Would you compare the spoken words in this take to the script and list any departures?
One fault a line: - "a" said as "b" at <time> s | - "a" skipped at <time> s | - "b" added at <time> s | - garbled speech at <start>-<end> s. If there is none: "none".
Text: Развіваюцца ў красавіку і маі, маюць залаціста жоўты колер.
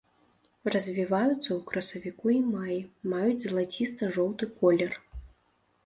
none